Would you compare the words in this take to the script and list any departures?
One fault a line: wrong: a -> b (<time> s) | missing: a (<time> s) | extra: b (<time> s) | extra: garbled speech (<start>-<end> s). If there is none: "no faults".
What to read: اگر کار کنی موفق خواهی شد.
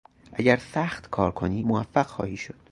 extra: سخت (0.6 s)